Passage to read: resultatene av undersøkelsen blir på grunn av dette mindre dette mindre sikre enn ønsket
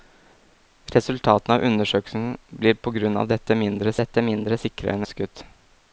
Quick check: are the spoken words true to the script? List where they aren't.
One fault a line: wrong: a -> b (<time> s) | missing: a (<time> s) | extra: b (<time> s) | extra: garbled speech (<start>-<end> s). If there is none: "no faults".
no faults